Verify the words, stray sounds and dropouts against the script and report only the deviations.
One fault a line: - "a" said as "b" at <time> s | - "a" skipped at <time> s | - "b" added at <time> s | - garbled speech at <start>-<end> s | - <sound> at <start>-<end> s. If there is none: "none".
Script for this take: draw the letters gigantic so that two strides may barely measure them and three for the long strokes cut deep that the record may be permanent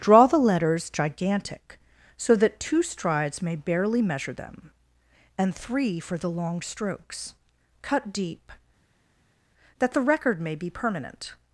none